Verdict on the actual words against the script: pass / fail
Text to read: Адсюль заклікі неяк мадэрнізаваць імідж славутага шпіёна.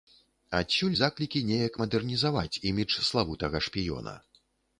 pass